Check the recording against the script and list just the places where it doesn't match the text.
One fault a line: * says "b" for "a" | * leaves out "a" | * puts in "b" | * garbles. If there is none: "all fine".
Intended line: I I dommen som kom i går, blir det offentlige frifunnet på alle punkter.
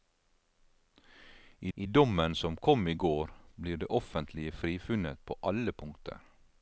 all fine